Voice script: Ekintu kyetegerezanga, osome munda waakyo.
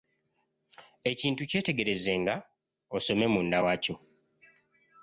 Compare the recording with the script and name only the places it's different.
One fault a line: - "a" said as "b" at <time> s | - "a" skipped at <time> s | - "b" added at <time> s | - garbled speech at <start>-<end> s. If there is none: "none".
none